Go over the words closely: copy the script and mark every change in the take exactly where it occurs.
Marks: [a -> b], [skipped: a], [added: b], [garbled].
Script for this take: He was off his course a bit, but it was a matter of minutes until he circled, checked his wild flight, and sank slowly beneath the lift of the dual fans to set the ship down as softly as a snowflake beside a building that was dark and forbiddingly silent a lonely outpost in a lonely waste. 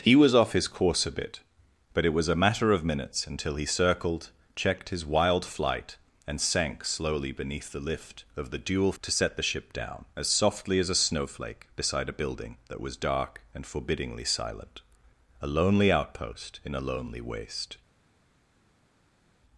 He was off his course a bit, but it was a matter of minutes until he circled, checked his wild flight, and sank slowly beneath the lift of the dual [skipped: fans] to set the ship down as softly as a snowflake beside a building that was dark and forbiddingly silent a lonely outpost in a lonely waste.